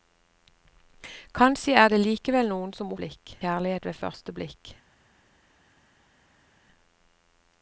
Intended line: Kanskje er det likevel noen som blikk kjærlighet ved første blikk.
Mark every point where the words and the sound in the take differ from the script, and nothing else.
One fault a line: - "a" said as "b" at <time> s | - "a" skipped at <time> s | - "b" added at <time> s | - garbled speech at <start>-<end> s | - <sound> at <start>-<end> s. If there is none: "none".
none